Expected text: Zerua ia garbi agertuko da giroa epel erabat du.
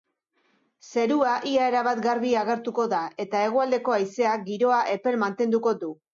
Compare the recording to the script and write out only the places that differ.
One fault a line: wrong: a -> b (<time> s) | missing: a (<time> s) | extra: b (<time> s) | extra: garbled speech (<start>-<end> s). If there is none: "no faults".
extra: erabat (1.7 s)
extra: eta hegoaldeko haizeak (3.3 s)
wrong: erabat -> mantenduko (5.3 s)